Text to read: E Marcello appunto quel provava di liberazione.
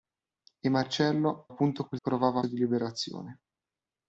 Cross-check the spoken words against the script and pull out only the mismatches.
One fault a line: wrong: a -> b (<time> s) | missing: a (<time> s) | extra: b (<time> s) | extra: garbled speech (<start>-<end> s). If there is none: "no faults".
no faults